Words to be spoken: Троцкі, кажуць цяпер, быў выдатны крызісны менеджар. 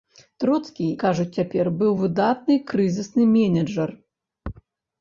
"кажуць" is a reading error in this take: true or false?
false